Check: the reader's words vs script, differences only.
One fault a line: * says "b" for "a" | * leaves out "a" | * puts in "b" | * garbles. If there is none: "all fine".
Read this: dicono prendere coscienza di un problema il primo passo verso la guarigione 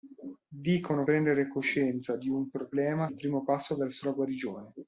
all fine